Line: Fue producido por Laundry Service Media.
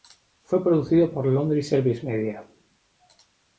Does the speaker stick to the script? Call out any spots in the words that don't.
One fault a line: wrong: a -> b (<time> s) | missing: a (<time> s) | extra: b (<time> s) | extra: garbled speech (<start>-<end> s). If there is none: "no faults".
no faults